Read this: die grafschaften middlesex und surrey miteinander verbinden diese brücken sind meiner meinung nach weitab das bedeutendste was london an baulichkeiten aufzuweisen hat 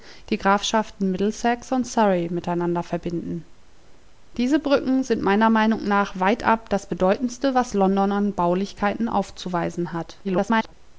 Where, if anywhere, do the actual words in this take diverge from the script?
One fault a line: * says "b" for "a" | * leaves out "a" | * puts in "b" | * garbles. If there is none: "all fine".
* garbles